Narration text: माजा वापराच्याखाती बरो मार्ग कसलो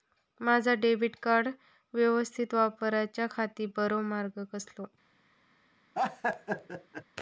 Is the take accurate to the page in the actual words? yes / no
no